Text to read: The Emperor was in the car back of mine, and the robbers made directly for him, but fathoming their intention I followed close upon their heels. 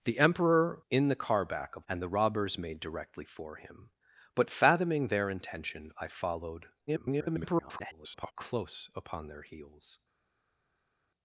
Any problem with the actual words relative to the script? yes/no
yes